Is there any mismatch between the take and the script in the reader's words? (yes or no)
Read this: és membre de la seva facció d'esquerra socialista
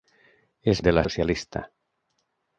yes